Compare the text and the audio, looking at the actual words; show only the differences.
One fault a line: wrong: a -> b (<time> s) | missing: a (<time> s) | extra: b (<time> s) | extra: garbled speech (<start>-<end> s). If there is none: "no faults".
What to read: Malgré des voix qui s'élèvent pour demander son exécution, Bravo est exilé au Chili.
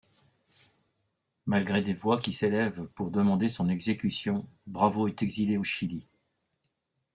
no faults